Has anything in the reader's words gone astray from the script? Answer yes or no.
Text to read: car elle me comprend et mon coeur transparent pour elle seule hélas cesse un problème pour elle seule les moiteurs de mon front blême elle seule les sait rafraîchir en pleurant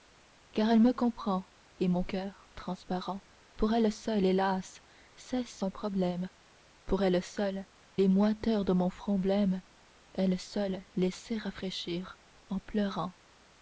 no